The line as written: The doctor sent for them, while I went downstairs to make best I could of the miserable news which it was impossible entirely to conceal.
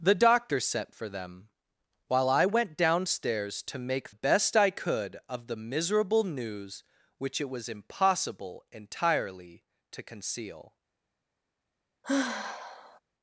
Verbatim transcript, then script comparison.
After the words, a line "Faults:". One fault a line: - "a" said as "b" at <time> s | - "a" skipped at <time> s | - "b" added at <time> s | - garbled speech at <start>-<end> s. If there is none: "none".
The doctor sent for them, while I went downstairs to make best I could of the miserable news which it was impossible entirely to conceal.
Faults:
none